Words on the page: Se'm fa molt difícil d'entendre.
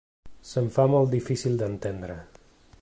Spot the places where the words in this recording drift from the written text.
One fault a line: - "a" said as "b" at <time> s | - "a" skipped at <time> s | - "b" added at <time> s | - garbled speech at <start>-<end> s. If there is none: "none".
none